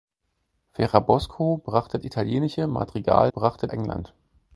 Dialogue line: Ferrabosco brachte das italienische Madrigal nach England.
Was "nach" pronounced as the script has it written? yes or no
no